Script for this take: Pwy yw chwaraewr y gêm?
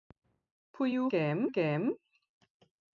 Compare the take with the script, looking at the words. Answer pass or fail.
fail